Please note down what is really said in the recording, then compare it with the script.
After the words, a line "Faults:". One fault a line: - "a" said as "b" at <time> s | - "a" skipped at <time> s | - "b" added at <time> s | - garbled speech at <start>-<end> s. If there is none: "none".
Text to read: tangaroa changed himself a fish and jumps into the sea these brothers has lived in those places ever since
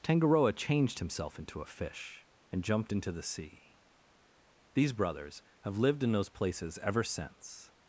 tangaroa changed himself into a fish and jumped into the sea these brothers have lived in those places ever since
Faults:
- "into" added at 1.4 s
- "jumps" said as "jumped" at 2.6 s
- "has" said as "have" at 5.6 s